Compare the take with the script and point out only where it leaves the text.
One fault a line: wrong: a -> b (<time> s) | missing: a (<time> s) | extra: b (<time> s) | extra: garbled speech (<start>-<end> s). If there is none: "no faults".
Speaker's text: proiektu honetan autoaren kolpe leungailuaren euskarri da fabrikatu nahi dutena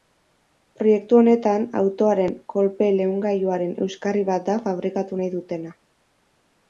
extra: bat (4.3 s)